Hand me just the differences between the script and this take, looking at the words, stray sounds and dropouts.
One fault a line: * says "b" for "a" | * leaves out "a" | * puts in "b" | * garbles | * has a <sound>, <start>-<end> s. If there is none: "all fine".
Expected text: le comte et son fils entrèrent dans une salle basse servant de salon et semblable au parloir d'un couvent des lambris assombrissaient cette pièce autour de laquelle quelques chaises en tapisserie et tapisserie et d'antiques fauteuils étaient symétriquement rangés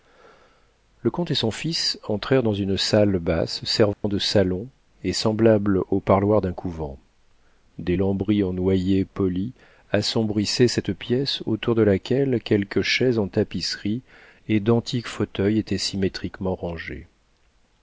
* has a dropout, 3.9-4.0 s
* puts in "en noyer poli"
* leaves out "tapisserie et"